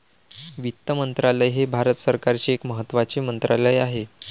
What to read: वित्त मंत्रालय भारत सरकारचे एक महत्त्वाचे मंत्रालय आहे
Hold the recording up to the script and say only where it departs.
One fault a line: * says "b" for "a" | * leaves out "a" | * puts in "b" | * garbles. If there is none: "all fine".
* puts in "हे"